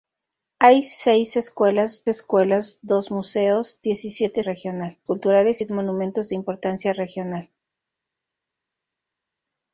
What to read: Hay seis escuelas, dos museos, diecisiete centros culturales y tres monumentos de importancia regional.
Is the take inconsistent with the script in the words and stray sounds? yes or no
yes